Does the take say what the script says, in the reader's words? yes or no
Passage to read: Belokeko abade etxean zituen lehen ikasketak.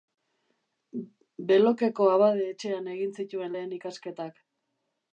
no